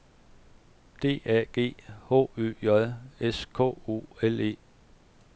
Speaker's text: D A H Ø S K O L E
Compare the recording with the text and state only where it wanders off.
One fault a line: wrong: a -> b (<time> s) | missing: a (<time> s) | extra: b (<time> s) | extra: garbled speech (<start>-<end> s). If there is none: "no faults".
extra: G (1.5 s)
extra: J (2.6 s)